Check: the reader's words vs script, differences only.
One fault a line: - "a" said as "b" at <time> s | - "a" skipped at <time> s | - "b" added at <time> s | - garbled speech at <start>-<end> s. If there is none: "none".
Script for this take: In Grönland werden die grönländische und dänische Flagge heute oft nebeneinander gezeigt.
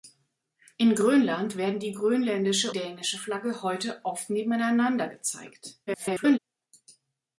- "und" skipped at 2.7 s
- garbled speech at 5.9-6.4 s